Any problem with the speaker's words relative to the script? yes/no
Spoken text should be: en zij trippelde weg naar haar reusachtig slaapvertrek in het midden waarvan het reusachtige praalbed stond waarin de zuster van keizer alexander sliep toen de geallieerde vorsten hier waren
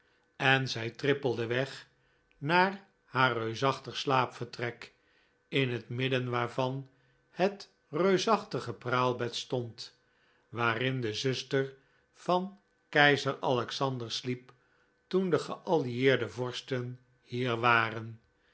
no